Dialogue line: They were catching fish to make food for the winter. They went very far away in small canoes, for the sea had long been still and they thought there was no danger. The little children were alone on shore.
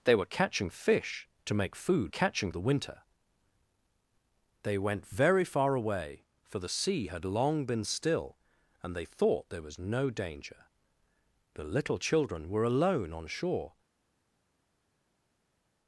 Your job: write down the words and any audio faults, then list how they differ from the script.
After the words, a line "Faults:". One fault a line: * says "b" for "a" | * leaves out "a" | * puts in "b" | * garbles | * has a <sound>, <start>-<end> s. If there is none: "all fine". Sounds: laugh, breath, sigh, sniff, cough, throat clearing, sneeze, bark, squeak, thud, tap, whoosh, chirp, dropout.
They were catching fish to make food catching the winter. They went very far away for the sea had long been still and they thought there was no danger. The little children were alone on shore.
Faults:
* says "catching" for "for"
* leaves out "in small canoes"